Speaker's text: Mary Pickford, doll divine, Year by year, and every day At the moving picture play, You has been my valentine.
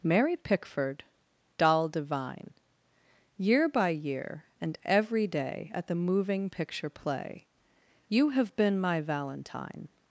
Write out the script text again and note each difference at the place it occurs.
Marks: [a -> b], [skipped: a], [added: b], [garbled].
Mary Pickford, doll divine, Year by year, and every day At the moving picture play, You [has -> have] been my valentine.